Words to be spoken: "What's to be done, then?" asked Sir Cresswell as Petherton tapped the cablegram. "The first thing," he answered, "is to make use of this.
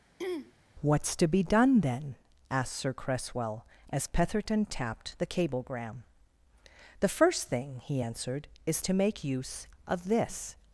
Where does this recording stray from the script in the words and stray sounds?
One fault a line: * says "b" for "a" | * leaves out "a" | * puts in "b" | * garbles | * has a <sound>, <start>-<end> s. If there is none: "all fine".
* has a throat clearing, 0.2-0.5 s